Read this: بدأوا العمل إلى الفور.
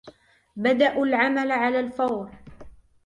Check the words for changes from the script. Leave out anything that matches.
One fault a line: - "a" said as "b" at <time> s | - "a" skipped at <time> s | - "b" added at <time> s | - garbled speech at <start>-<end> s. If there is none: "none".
- "إلى" said as "على" at 1.5 s